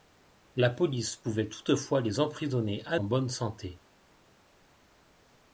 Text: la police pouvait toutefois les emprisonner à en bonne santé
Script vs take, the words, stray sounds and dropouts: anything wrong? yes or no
no